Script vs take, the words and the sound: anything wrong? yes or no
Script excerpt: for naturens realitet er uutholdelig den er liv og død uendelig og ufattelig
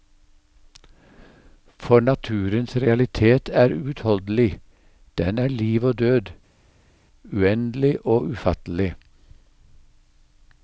no